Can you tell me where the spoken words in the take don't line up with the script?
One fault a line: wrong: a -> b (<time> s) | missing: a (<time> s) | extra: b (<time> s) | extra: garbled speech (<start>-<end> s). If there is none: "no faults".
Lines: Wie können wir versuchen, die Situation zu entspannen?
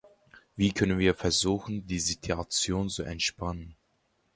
no faults